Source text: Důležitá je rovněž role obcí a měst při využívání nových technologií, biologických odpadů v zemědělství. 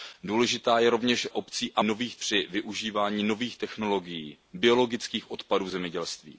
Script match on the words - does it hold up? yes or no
no